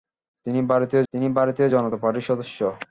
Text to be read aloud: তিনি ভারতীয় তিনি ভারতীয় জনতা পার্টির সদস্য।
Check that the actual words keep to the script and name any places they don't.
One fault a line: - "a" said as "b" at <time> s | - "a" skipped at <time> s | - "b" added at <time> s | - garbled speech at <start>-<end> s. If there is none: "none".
none